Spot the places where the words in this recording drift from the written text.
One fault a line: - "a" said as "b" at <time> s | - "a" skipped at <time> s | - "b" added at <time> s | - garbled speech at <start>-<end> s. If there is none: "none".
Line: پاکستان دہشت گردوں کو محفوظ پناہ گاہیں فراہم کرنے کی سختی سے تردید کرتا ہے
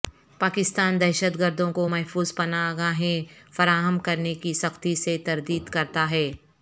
none